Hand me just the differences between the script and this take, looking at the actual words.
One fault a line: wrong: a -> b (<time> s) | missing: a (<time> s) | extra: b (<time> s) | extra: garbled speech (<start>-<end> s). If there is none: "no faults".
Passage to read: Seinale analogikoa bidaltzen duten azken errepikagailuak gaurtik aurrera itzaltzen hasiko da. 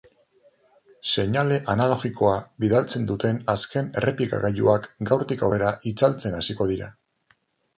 wrong: da -> dira (6.8 s)